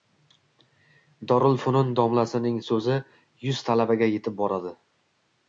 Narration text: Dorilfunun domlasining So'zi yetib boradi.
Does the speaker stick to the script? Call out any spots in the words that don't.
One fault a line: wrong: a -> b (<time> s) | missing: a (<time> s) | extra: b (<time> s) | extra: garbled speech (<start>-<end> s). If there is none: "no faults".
extra: yuz talabaga (3.5 s)